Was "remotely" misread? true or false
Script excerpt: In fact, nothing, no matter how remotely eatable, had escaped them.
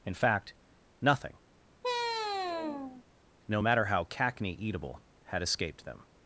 true